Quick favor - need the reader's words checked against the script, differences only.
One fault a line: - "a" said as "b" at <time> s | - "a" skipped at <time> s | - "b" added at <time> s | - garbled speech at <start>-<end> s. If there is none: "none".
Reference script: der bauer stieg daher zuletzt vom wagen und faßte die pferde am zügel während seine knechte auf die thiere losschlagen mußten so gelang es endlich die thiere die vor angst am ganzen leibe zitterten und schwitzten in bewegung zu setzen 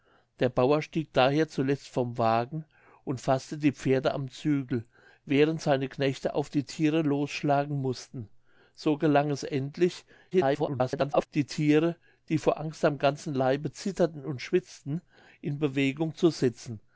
- garbled speech at 10.3-11.3 s